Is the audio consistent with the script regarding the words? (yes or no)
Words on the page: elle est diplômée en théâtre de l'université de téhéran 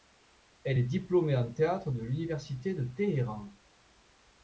yes